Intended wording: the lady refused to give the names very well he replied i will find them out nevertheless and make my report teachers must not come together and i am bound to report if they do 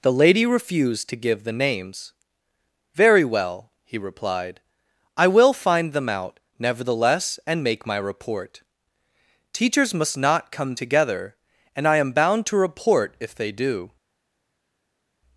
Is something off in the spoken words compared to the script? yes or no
no